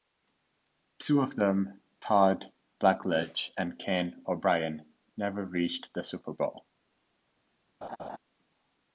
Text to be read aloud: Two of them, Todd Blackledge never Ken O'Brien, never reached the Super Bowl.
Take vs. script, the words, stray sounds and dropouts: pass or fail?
fail